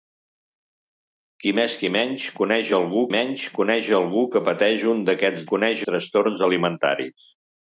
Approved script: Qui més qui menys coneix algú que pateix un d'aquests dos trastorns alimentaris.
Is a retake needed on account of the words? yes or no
yes